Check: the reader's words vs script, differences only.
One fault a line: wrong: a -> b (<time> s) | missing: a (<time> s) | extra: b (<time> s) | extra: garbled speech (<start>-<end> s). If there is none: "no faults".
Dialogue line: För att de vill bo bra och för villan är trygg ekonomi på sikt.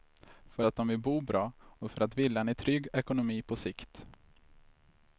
extra: att (2.0 s)